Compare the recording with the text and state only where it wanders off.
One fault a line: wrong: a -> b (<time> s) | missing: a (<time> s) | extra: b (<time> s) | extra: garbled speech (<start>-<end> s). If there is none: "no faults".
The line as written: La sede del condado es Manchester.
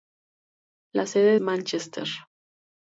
missing: del condado es (1.4 s)